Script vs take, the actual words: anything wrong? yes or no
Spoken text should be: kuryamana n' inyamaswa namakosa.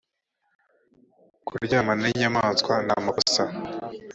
no